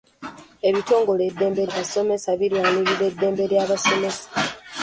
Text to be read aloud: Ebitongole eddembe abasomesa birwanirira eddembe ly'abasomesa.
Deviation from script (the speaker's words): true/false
false